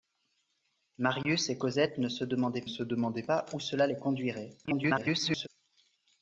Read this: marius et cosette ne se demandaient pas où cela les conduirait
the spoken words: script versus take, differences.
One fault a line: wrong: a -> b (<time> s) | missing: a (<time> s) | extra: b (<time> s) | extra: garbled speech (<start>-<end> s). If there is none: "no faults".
extra: se demandaient (2.7 s)
extra: garbled speech (4.6-5.5 s)